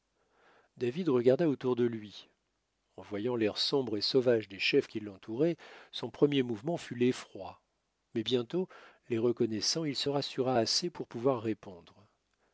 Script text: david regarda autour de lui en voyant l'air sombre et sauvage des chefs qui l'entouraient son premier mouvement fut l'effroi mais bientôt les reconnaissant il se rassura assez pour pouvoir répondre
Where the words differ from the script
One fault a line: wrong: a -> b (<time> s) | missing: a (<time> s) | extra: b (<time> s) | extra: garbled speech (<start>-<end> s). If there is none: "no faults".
no faults